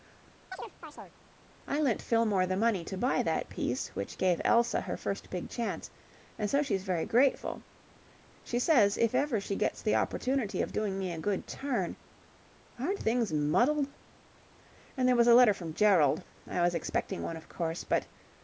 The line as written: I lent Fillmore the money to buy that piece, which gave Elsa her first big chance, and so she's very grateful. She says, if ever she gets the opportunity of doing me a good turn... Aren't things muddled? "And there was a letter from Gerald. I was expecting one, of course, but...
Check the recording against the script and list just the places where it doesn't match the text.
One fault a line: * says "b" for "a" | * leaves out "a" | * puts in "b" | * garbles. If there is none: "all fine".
all fine